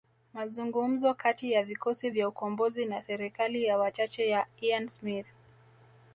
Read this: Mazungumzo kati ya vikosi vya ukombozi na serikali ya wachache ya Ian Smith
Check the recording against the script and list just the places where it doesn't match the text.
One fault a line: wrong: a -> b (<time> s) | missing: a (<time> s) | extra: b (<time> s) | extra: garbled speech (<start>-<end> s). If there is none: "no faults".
no faults